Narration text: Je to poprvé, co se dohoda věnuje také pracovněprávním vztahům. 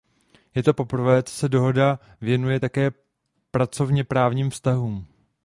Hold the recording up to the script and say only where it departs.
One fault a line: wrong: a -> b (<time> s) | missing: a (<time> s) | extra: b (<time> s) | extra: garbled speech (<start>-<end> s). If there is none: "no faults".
no faults